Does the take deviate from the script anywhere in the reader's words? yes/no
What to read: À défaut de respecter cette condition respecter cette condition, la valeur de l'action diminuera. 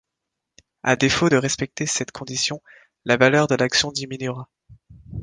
yes